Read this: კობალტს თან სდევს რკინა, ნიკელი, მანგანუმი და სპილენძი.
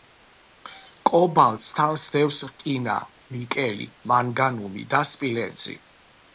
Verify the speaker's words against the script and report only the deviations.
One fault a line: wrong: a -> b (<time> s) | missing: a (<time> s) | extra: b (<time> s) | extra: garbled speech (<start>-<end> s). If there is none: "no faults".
no faults